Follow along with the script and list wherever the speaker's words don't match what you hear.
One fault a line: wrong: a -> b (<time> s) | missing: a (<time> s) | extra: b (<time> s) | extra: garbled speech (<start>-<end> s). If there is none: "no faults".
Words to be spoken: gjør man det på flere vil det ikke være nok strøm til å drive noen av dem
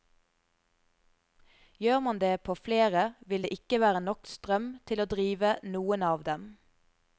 no faults